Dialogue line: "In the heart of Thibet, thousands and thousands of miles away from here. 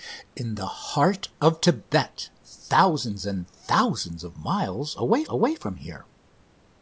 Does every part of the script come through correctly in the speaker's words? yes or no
no